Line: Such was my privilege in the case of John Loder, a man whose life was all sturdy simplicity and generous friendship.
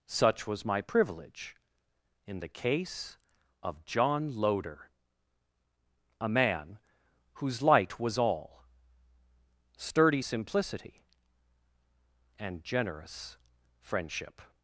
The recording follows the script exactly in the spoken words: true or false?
false